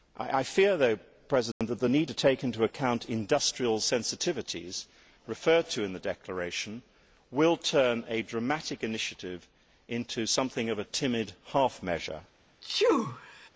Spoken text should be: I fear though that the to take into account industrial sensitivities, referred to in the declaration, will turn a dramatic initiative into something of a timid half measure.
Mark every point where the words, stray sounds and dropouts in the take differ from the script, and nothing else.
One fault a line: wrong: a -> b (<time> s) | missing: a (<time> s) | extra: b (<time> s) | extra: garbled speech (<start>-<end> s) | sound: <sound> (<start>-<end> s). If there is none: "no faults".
sound: dropout (1.5-1.6 s)
extra: need (1.9 s)
sound: sneeze (12.6-13.5 s)